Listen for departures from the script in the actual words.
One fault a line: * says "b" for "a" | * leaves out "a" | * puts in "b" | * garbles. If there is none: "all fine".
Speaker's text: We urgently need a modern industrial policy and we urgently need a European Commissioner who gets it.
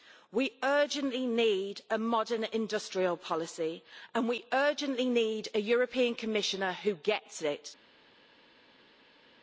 all fine